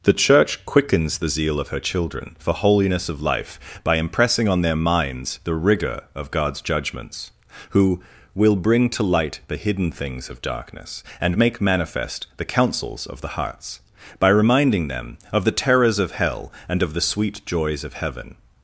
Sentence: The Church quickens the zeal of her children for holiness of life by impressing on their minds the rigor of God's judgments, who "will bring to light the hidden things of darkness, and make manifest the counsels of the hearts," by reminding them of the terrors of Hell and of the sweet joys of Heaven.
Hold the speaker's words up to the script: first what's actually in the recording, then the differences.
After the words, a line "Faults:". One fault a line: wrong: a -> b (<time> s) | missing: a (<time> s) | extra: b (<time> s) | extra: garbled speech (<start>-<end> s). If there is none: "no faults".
The Church quickens the zeal of her children for holiness of life by impressing on their minds the rigor of God's judgments, who "will bring to light the hidden things of darkness, and make manifest the counsels of the hearts," by reminding them of the terrors of Hell and of the sweet joys of Heaven.
Faults:
no faults